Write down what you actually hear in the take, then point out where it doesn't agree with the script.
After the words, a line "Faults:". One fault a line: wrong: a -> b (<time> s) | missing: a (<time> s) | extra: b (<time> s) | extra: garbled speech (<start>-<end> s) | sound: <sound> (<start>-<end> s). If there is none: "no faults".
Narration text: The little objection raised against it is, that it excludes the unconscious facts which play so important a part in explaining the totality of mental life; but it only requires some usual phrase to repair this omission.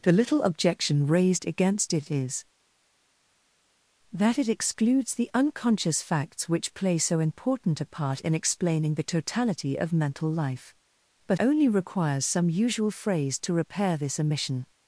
The little objection raised against it is, that it excludes the unconscious facts which play so important a part in explaining the totality of mental life; but only requires some usual phrase to repair this omission.
Faults:
missing: it (11.4 s)